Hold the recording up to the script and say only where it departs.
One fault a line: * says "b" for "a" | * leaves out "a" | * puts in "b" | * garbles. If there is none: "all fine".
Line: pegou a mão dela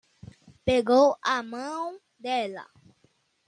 all fine